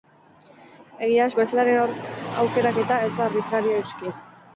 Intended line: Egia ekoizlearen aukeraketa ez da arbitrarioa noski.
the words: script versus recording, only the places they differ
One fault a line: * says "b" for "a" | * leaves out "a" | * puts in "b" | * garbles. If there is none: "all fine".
all fine